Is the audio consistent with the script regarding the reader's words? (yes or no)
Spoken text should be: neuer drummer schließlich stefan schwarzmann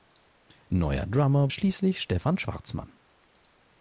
yes